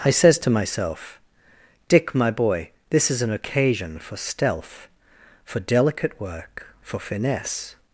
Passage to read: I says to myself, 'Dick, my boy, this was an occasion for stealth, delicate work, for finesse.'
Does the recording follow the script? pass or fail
fail